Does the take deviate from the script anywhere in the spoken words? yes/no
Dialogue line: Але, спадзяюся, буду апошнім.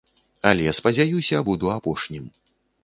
no